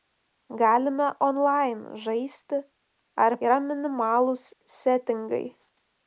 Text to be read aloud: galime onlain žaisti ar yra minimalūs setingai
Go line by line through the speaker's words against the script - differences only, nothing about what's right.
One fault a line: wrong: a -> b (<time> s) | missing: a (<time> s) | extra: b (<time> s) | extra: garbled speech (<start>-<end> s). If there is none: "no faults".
no faults